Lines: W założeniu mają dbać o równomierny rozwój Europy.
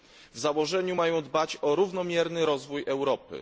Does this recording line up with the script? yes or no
yes